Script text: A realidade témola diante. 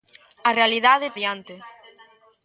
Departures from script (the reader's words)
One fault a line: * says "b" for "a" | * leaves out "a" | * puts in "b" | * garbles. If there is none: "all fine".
* leaves out "témola"